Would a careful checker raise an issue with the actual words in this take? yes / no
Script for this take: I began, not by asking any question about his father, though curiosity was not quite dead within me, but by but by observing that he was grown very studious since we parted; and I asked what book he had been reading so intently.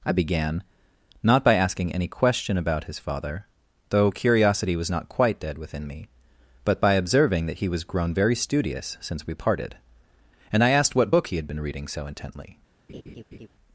yes